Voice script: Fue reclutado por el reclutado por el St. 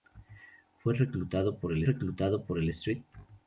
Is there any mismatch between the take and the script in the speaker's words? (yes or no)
no